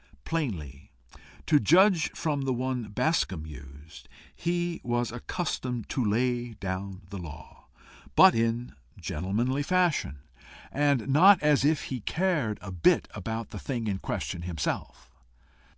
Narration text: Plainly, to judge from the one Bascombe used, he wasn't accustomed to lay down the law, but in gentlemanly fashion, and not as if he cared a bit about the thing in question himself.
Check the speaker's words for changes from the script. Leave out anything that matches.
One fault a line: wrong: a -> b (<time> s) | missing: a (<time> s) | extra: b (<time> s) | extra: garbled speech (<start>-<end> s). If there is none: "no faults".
wrong: wasn't -> was (4.8 s)